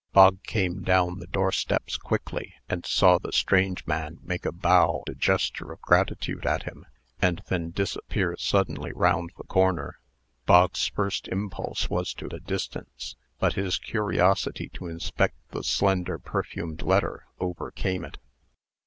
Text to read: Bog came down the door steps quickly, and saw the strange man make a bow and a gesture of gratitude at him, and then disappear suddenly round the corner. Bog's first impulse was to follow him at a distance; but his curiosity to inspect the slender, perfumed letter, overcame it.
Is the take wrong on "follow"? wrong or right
wrong